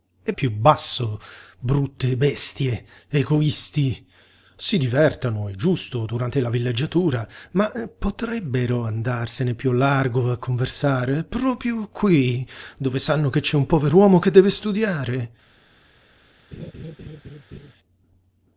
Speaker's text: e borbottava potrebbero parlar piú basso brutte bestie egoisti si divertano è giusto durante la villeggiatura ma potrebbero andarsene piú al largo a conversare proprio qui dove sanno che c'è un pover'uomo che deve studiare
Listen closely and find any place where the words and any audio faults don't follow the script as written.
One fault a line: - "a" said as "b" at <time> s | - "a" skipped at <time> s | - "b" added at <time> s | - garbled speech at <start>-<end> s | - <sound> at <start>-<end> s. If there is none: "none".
- "borbottava potrebbero parlar" skipped at 0.3 s
- laugh at 16.5-17.7 s